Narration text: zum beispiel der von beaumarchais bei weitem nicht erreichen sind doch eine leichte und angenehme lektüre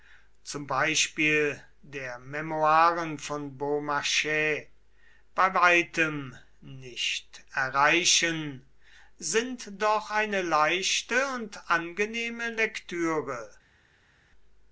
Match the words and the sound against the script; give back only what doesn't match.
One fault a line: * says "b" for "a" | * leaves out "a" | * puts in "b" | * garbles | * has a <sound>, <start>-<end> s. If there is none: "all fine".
* puts in "memoiren"